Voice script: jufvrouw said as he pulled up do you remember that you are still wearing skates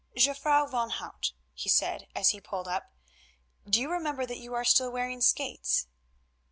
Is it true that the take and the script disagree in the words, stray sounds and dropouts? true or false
true